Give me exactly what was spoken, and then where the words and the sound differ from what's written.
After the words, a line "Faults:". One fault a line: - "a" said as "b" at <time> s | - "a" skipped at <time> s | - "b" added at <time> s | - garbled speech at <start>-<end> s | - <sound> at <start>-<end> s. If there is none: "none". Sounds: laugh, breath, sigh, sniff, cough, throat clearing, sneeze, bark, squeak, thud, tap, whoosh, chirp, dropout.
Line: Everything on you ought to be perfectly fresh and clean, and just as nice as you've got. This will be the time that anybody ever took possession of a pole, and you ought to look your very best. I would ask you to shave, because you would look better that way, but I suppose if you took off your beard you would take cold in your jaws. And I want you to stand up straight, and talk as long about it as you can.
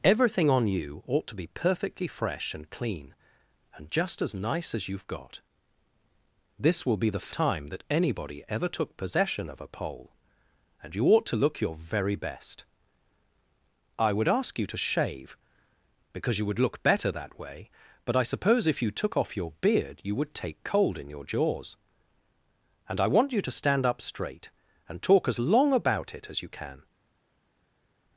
Everything on you ought to be perfectly fresh and clean, and just as nice as you've got. This will be the time that anybody ever took possession of a pole, and you ought to look your very best. I would ask you to shave, because you would look better that way, but I suppose if you took off your beard you would take cold in your jaws. And I want you to stand up straight, and talk as long about it as you can.
Faults:
none